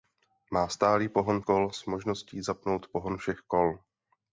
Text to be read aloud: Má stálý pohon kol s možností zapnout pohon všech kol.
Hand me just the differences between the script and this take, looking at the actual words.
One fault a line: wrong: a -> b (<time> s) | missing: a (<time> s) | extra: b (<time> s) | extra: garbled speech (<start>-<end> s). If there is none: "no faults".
no faults